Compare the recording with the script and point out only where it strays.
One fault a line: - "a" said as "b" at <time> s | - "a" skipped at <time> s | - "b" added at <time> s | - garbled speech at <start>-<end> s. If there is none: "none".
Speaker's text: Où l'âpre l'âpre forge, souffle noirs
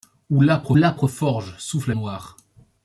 none